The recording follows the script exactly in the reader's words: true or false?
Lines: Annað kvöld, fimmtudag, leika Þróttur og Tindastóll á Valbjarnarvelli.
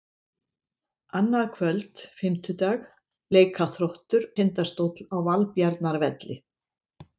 false